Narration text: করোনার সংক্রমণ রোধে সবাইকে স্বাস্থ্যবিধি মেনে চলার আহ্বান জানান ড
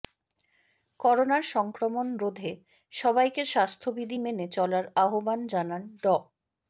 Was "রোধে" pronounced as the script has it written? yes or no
yes